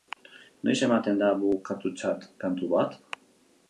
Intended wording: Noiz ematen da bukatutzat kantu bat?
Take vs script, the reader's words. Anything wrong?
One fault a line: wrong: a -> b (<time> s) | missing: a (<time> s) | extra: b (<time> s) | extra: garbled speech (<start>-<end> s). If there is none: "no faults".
no faults